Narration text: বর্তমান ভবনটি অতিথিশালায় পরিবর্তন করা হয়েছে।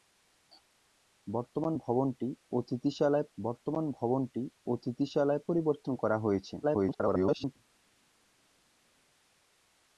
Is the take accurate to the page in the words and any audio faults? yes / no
no